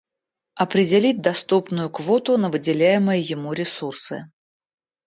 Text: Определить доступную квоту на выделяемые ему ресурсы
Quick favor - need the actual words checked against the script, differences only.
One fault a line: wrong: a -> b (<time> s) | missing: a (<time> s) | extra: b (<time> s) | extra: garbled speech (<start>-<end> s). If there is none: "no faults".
no faults